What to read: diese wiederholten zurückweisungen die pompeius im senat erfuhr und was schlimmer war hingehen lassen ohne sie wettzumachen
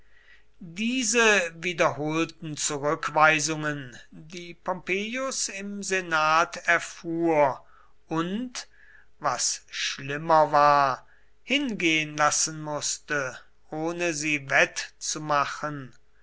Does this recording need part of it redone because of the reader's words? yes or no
yes